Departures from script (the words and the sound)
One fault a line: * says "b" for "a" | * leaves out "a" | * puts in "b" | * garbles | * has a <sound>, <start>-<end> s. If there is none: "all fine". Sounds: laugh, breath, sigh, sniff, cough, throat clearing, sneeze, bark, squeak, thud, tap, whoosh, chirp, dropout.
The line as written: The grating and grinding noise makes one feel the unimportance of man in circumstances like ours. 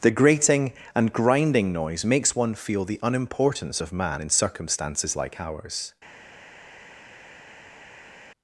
all fine